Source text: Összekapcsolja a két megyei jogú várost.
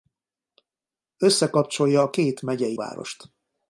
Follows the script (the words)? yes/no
no